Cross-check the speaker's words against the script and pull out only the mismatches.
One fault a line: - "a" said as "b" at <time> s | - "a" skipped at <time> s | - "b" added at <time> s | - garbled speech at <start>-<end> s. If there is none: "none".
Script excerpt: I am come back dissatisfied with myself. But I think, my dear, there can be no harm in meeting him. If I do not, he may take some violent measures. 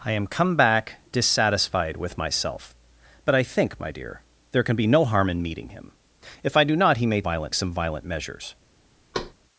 - "take" said as "violent" at 7.2 s